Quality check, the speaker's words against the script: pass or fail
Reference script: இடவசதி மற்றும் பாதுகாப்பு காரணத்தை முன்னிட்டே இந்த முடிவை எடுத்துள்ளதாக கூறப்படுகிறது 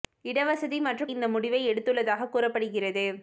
fail